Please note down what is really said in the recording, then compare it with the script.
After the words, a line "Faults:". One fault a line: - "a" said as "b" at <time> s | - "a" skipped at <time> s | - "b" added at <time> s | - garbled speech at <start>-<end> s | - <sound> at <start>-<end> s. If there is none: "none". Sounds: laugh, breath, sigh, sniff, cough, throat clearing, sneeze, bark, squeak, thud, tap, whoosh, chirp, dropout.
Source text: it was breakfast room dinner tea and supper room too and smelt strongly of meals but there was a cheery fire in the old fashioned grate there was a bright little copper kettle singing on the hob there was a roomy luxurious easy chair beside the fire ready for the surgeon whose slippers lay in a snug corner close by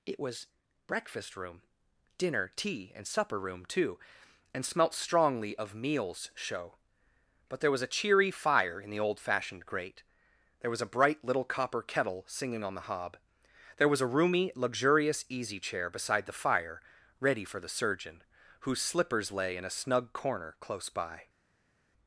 it was breakfast room dinner tea and supper room too and smelt strongly of meals show but there was a cheery fire in the old fashioned grate there was a bright little copper kettle singing on the hob there was a roomy luxurious easy chair beside the fire ready for the surgeon whose slippers lay in a snug corner close by
Faults:
- "show" added at 6.3 s